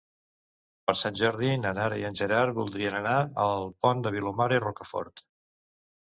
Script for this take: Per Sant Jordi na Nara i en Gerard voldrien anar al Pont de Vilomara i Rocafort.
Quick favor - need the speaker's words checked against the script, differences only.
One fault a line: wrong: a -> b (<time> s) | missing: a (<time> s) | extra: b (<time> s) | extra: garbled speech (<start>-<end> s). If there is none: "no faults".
no faults